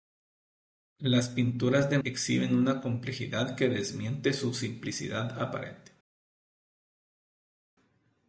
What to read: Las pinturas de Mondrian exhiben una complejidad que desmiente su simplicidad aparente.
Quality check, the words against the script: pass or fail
fail